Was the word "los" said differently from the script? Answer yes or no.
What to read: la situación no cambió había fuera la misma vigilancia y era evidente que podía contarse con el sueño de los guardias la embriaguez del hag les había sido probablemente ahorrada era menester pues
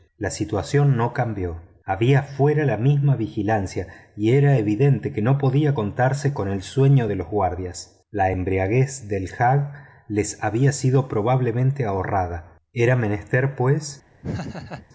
no